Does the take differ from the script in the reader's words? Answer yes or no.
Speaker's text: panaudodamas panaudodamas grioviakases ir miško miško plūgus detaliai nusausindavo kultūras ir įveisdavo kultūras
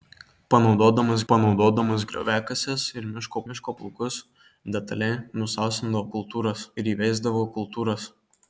no